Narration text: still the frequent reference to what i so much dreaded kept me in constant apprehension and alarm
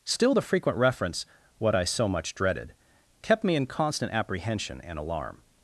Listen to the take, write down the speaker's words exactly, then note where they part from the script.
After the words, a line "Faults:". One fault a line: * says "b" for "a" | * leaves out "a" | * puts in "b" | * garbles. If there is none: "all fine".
still the frequent reference what i so much dreaded kept me in constant apprehension and alarm
Faults:
* leaves out "to"